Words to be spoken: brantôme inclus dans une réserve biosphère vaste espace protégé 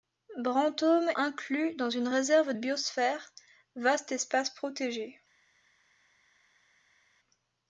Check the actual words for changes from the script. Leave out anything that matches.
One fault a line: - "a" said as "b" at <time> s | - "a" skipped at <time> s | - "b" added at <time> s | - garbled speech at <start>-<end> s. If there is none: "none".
none